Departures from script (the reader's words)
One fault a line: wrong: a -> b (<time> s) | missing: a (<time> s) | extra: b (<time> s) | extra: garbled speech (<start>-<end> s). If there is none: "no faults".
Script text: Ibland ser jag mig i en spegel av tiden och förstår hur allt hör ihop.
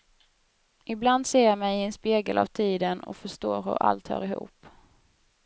no faults